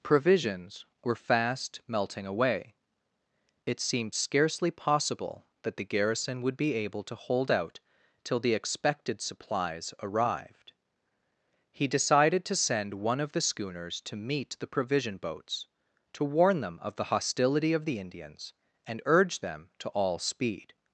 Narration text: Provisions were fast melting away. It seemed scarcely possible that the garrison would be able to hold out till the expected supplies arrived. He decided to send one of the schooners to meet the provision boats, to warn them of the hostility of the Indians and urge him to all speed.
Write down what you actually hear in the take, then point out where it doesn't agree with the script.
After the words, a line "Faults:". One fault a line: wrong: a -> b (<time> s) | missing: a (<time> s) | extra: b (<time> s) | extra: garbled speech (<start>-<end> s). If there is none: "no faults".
Provisions were fast melting away. It seemed scarcely possible that the garrison would be able to hold out till the expected supplies arrived. He decided to send one of the schooners to meet the provision boats, to warn them of the hostility of the Indians and urge them to all speed.
Faults:
wrong: him -> them (19.4 s)